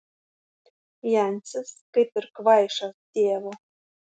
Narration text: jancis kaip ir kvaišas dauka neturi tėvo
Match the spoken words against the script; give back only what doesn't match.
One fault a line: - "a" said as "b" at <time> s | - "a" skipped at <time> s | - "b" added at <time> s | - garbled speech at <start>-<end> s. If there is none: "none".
- "dauka neturi" skipped at 3.0 s